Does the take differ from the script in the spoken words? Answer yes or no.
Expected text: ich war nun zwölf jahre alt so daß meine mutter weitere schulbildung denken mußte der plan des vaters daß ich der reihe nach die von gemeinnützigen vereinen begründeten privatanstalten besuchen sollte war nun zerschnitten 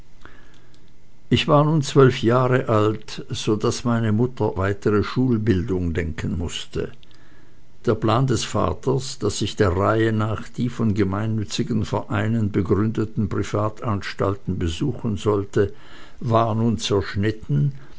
no